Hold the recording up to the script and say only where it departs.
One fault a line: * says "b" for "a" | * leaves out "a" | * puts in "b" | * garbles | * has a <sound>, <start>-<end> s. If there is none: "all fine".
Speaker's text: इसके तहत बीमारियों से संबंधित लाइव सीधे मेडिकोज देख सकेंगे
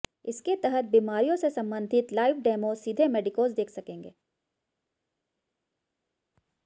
* puts in "डेमो"